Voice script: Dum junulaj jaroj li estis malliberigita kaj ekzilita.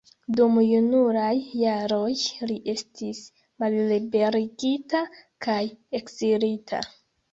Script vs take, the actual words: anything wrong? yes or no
no